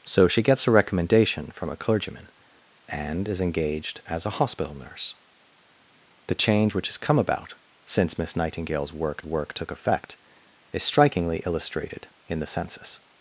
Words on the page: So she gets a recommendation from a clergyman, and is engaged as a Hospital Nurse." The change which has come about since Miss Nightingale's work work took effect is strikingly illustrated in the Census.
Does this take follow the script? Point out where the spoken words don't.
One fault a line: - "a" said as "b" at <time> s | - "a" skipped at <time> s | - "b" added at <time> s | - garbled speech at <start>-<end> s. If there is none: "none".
none